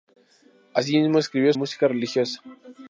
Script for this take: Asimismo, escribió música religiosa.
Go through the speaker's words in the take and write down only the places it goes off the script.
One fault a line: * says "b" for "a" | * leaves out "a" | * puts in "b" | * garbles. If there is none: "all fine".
all fine